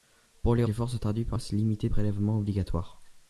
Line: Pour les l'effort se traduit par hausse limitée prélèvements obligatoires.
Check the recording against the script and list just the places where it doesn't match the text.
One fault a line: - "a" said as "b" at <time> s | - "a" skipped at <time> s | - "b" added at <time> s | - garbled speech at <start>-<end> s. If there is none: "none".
none